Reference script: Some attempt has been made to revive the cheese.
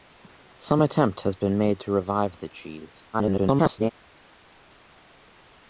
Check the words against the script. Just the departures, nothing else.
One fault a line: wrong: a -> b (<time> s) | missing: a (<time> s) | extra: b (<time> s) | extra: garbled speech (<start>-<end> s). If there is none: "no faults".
extra: garbled speech (3.1-3.9 s)